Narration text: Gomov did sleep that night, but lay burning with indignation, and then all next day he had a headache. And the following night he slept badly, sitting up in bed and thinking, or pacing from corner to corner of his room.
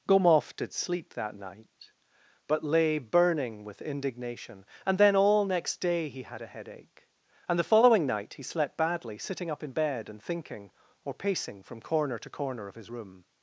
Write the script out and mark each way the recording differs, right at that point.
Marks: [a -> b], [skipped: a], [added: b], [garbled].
Gomov did sleep that night, but lay burning with indignation, and then all next day he had a headache. And the following night he slept badly, sitting up in bed and thinking, or pacing from corner to corner of his room.